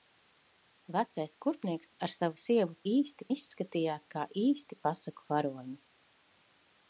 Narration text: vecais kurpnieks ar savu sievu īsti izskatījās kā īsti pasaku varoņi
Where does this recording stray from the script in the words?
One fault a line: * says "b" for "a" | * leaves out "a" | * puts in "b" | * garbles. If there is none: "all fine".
all fine